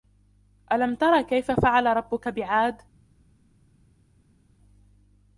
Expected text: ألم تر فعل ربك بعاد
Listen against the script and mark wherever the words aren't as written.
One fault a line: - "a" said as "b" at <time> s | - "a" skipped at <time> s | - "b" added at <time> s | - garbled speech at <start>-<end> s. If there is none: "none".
- "كيف" added at 1.2 s